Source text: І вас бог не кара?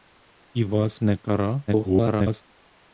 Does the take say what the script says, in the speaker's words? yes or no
no